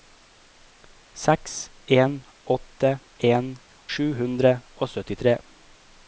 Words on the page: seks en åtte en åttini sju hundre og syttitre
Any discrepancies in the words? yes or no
yes